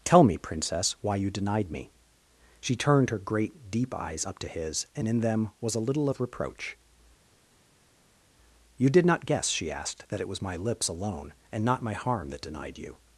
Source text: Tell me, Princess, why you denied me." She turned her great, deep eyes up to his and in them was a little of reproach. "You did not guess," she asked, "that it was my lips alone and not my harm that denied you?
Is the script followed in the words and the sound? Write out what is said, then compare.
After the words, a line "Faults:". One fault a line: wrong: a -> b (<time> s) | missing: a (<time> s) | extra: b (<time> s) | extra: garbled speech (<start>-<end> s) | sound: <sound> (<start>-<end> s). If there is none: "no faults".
Tell me, Princess, why you denied me." She turned her great, deep eyes up to his and in them was a little of reproach. "You did not guess," she asked, "that it was my lips alone and not my harm that denied you?
Faults:
no faults